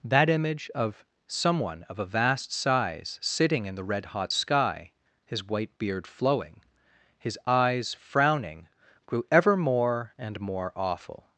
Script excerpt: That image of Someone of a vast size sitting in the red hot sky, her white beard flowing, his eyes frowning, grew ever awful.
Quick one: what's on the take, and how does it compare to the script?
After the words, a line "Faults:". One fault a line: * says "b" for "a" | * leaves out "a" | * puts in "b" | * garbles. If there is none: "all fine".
That image of Someone of a vast size sitting in the red hot sky, his white beard flowing, his eyes frowning, grew ever more and more awful.
Faults:
* says "his" for "her"
* puts in "more and more"